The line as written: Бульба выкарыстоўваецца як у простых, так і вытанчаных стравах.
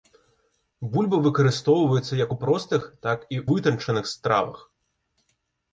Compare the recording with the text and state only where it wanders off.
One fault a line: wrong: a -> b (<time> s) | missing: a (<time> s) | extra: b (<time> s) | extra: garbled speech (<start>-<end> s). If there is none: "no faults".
no faults